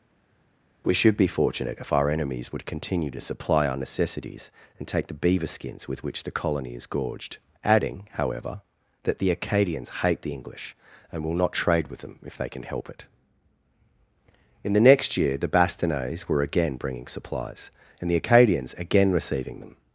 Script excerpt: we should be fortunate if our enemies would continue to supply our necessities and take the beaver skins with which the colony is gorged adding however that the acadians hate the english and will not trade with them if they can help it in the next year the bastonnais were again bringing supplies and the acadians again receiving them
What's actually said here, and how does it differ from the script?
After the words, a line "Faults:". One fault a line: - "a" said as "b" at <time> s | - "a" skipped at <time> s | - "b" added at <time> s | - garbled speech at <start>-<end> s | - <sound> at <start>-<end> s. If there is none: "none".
we should be fortunate if our enemies would continue to supply our necessities and take the beaver skins with which the colony is gorged adding however that the acadians hate the english and will not trade with them if they can help it in the next year the bastonnais were again bringing supplies and the acadians again receiving them
Faults:
none